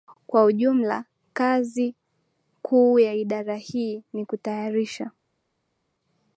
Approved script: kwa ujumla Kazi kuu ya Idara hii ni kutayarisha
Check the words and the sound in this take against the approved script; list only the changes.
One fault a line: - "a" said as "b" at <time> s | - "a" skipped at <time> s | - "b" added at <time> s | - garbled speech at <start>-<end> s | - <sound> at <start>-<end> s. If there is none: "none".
none